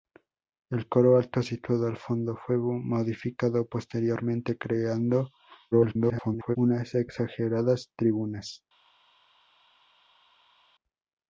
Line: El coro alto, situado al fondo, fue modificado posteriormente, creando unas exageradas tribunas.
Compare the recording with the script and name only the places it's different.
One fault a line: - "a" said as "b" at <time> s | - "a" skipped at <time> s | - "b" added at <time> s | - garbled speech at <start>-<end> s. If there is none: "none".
- garbled speech at 5.7-6.6 s